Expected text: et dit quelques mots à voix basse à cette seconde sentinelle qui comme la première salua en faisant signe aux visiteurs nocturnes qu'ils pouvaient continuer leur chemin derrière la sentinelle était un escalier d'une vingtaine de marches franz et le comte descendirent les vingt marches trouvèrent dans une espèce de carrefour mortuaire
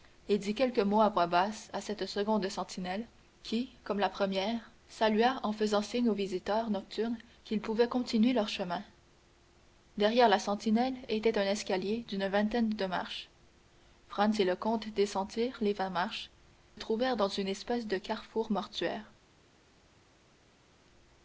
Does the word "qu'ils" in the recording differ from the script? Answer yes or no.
no